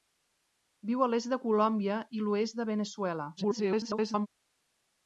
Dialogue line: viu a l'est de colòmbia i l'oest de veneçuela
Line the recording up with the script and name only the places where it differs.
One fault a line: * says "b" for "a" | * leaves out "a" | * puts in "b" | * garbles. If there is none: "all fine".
* garbles